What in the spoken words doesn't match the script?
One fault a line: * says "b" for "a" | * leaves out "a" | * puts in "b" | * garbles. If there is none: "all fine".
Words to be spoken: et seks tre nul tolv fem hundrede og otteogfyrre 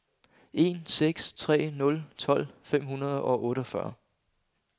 * says "en" for "et"